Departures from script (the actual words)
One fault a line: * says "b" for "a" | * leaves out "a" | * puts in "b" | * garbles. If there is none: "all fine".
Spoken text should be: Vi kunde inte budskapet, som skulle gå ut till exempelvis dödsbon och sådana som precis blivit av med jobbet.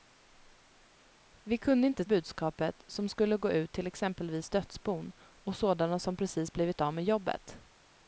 all fine